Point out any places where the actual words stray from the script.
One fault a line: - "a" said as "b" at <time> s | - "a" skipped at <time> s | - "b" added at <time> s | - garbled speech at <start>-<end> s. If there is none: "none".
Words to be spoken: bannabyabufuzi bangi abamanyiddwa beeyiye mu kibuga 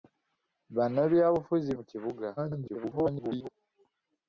- "bangi abamanyiddwa beeyiye" skipped at 1.7 s
- garbled speech at 2.4-3.5 s